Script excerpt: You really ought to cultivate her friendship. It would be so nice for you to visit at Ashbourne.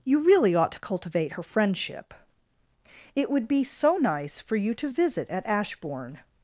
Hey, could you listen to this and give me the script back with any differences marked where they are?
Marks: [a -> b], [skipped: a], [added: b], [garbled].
You really ought to cultivate her friendship. It would be so nice for you to visit at Ashbourne.